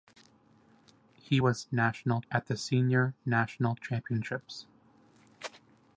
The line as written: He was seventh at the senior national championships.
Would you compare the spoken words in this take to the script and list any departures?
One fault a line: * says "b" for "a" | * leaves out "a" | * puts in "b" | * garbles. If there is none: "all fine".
* says "national" for "seventh"